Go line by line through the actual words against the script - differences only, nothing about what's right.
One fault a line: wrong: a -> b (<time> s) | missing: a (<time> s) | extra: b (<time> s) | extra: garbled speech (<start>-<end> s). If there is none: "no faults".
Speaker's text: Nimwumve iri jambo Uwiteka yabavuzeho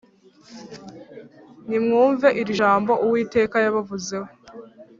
no faults